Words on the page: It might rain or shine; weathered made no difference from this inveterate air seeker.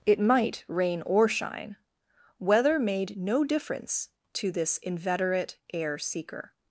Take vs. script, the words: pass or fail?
fail